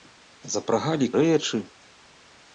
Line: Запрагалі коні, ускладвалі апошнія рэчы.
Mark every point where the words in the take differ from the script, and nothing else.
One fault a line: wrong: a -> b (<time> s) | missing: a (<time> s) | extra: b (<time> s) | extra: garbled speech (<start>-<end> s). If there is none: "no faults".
missing: коні ускладвалі апошнія (1.1 s)